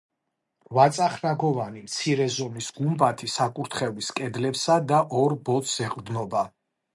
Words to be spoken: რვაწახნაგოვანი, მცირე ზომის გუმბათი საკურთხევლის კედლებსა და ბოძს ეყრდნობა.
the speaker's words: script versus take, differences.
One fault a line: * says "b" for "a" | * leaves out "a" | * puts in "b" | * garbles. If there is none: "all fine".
* puts in "ორ"